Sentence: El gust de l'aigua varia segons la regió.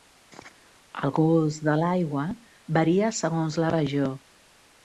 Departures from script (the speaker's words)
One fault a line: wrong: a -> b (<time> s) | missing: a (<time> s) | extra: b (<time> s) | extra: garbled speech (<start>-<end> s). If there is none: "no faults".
no faults